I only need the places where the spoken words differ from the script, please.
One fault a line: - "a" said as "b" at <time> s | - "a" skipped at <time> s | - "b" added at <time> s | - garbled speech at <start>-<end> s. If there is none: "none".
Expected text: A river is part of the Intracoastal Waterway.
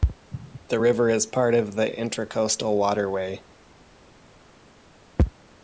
- "A" said as "The" at 0.7 s